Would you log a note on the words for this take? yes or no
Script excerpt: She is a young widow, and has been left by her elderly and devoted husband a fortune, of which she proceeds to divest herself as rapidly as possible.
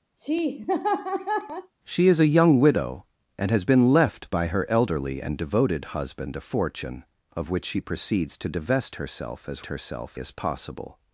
yes